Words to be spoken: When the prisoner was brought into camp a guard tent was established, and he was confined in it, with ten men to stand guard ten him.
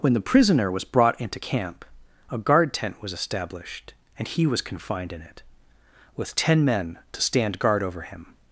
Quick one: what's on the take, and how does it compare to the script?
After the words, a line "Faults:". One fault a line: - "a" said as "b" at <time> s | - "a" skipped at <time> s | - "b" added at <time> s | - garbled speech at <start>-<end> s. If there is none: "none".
When the prisoner was brought into camp a guard tent was established, and he was confined in it, with ten men to stand guard over him.
Faults:
- "ten" said as "over" at 7.8 s